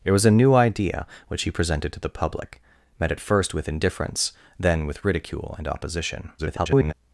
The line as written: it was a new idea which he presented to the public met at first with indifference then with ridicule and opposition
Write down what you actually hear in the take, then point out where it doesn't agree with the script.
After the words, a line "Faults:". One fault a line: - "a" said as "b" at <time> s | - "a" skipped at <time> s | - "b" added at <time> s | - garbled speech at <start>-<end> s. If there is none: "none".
it was a new idea which he presented to the public met at first with indifference then with ridicule and opposition [garbled]
Faults:
- garbled speech at 6.4-6.9 s